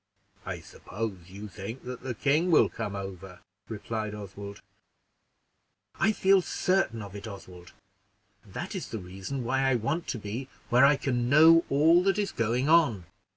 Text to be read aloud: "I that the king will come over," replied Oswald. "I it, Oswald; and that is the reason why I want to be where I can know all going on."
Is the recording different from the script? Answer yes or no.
yes